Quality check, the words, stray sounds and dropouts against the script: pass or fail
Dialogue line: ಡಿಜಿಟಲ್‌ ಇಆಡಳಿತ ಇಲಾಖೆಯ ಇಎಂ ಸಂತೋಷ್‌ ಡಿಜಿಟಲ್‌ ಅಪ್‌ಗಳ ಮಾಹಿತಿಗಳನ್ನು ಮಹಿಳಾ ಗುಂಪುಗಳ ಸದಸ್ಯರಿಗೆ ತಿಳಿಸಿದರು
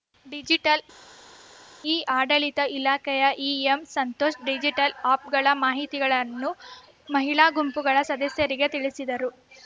pass